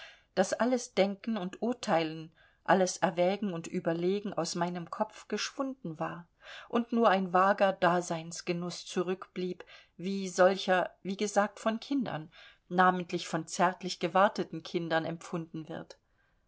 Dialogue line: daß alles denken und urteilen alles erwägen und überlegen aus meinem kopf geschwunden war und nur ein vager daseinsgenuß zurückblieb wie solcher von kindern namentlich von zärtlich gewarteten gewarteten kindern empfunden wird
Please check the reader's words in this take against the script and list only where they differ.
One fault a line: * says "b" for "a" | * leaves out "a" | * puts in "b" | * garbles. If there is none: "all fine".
* puts in "wie gesagt"
* leaves out "gewarteten"